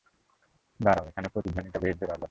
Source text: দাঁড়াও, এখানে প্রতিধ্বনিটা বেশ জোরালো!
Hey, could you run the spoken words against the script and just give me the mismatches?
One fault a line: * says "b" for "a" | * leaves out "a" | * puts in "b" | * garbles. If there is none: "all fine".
all fine